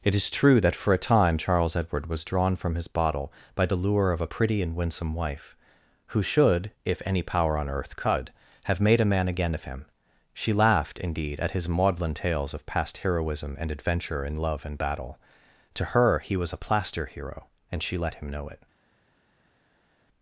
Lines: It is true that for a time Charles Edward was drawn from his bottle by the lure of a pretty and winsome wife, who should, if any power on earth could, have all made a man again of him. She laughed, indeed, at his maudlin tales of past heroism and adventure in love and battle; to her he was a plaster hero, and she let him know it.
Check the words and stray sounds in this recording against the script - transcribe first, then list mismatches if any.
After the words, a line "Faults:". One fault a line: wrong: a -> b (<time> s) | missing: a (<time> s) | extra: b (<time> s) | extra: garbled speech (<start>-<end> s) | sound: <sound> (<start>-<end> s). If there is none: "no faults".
It is true that for a time Charles Edward was drawn from his bottle by the lure of a pretty and winsome wife, who should, if any power on earth could, have made a man again of him. She laughed, indeed, at his maudlin tales of past heroism and adventure in love and battle; to her he was a plaster hero, and she let him know it.
Faults:
missing: all (8.8 s)